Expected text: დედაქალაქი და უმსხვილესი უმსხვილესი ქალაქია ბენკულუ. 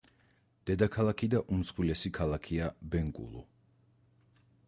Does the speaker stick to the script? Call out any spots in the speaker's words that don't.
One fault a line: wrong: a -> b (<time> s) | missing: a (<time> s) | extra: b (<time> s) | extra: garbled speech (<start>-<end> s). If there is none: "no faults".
missing: უმსხვილესი (2.1 s)